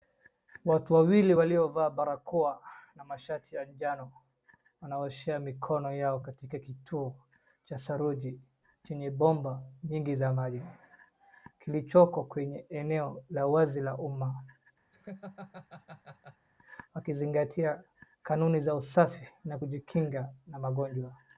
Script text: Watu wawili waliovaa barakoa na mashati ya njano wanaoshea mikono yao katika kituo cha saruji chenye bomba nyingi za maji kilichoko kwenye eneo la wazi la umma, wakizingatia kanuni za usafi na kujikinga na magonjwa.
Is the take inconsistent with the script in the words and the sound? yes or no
yes